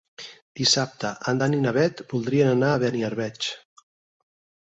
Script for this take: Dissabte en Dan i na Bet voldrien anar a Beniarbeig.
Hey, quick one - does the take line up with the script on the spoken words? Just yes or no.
yes